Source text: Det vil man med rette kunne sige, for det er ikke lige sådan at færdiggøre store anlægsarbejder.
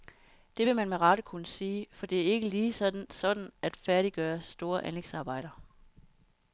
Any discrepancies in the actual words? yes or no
no